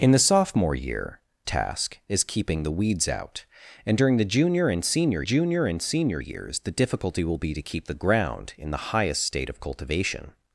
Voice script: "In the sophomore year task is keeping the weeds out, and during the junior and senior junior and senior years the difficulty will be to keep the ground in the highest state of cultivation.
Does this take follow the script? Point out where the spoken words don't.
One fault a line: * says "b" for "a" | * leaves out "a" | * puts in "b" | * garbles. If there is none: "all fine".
all fine